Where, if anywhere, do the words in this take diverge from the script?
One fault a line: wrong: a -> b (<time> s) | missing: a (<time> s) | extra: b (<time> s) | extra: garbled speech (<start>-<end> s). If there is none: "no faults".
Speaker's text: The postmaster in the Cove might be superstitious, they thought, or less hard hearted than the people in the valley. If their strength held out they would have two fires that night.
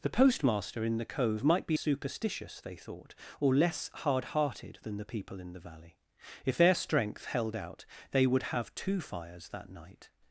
no faults